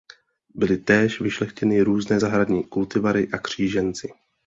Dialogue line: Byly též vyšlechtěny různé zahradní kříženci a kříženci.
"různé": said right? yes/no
yes